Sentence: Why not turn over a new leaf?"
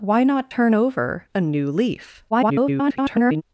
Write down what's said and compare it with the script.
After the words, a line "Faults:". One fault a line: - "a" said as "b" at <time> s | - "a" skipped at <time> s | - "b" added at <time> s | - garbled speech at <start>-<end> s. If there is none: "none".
Why not turn over a new leaf?" [garbled]
Faults:
- garbled speech at 2.3-3.4 s